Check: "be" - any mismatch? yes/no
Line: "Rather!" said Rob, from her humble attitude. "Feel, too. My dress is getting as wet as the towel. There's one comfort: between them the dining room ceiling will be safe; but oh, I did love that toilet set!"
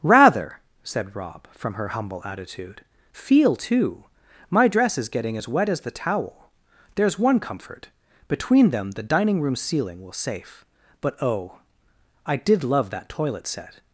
yes